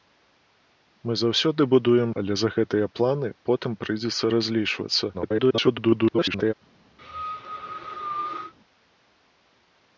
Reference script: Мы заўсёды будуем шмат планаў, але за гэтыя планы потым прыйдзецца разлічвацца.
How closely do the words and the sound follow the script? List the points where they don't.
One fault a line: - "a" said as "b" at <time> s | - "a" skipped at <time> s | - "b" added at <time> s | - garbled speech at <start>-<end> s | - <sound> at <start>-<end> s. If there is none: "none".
- "шмат планаў" skipped at 2.1 s
- garbled speech at 5.1-6.5 s
- cough at 7.0-8.5 s